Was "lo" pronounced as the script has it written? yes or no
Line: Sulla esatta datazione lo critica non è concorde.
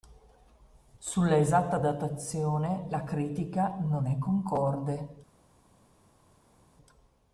no